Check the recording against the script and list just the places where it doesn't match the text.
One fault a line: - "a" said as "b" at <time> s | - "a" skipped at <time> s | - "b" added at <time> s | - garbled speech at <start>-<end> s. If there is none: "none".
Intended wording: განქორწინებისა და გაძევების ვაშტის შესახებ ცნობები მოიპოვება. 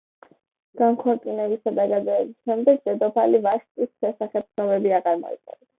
- "შემდეგ დედოფალი" added at 2.5 s
- "აღარ" added at 5.0 s